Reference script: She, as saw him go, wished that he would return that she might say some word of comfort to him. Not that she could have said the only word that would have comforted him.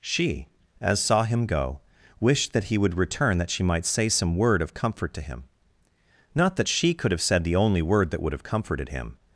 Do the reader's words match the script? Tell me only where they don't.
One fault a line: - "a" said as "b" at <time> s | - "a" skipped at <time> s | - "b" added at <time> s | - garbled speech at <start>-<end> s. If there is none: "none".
none